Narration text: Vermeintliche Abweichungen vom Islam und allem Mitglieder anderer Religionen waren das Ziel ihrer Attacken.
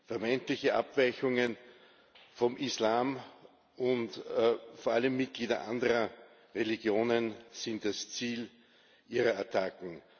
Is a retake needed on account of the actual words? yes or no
yes